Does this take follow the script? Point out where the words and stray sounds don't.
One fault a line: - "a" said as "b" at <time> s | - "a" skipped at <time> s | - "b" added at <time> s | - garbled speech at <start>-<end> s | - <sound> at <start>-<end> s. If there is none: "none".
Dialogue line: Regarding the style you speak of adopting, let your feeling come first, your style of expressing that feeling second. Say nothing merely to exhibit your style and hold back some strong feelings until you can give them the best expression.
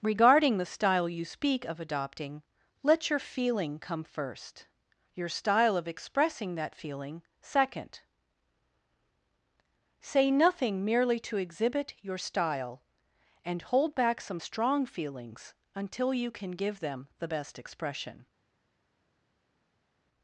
none